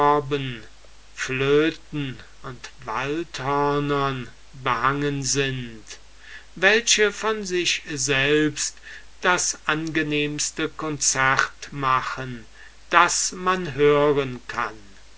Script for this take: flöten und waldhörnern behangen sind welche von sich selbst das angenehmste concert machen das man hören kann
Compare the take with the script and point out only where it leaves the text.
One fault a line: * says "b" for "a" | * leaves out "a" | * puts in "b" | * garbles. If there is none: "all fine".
all fine